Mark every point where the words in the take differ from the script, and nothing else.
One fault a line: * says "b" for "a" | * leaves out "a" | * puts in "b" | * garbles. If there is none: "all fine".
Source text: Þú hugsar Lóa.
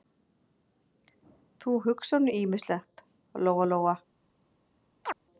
* puts in "nú ýmislegt Lóa"